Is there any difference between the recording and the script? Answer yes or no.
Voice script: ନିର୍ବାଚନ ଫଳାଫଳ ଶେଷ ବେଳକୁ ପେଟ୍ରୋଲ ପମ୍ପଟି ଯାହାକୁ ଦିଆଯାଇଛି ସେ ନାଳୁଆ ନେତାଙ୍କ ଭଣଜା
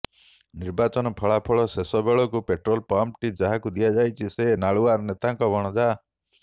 no